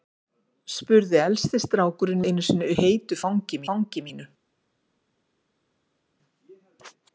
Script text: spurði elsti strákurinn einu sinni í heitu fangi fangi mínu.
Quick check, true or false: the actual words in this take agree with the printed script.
true